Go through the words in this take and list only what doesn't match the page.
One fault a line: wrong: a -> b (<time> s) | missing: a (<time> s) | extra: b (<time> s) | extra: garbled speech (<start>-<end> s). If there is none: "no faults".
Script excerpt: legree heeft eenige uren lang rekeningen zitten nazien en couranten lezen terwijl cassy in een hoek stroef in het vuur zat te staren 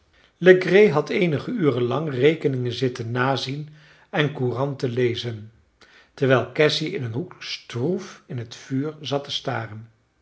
wrong: heeft -> had (0.9 s)